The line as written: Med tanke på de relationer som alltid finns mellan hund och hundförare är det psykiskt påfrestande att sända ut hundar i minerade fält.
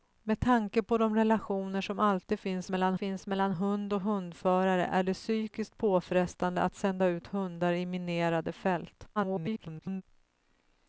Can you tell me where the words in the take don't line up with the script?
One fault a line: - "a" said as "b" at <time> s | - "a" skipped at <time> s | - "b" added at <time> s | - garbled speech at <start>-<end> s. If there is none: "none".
- "finns mellan" added at 3.0 s
- garbled speech at 9.2-10.0 s